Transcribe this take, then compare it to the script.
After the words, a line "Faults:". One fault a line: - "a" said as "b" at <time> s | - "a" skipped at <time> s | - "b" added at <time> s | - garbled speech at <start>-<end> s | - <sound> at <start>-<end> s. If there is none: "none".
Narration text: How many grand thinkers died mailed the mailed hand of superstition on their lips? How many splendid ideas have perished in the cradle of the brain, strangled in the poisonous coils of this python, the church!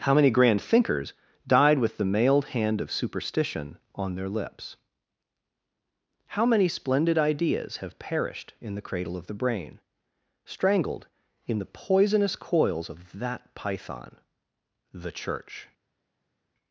How many grand thinkers died with the mailed hand of superstition on their lips? How many splendid ideas have perished in the cradle of the brain, strangled in the poisonous coils of that python, the church!
Faults:
- "mailed" said as "with" at 1.8 s
- "this" said as "that" at 13.2 s